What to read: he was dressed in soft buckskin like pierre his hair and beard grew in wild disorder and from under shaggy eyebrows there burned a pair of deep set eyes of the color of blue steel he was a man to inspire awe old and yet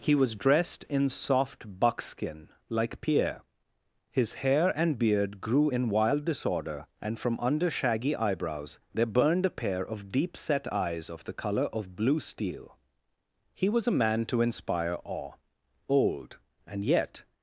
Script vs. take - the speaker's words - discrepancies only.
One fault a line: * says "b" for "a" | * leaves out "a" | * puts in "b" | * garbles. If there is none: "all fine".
all fine